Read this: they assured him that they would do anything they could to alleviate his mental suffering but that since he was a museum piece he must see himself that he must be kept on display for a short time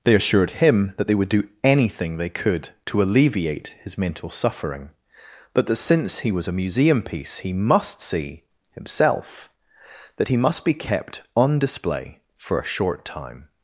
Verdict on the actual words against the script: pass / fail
pass